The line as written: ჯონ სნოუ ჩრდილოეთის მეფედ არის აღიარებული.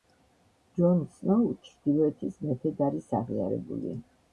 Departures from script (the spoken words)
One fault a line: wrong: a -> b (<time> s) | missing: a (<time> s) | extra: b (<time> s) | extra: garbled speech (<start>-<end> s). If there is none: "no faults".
no faults